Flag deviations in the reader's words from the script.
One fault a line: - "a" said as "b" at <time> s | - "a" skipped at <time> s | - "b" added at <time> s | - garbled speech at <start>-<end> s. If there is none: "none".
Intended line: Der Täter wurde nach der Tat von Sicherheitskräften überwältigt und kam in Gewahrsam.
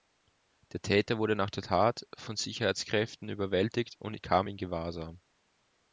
none